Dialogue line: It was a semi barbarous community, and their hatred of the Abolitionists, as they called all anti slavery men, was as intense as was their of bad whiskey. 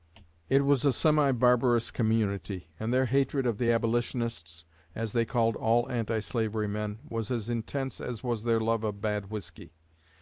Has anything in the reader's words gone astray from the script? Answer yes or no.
yes